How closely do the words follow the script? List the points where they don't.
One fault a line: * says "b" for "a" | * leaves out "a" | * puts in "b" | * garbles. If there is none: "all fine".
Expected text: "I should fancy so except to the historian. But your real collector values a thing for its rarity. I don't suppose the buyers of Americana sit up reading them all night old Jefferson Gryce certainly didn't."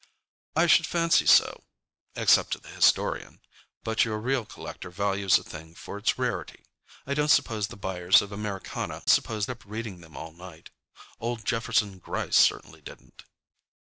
* says "suppose" for "sit"